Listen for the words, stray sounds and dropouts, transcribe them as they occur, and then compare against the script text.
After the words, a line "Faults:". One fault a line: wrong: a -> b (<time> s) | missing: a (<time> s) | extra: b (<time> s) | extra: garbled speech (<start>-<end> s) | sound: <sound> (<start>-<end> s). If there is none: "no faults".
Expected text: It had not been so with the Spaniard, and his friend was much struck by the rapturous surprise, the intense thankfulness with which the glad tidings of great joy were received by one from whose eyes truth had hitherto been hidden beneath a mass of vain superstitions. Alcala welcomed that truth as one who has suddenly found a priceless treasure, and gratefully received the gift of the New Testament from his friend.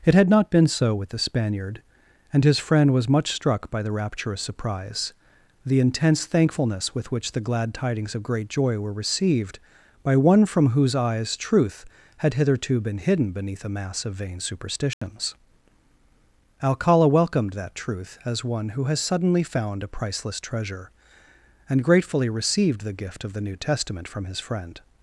It had not been so with the Spaniard, and his friend was much struck by the rapturous surprise, the intense thankfulness with which the glad tidings of great joy were received by one from whose eyes truth had hitherto been hidden beneath a mass of vain superstitions. Alcala welcomed that truth as one who has suddenly found a priceless treasure, and gratefully received the gift of the New Testament from his friend.
Faults:
sound: dropout (14.9-15.0 s)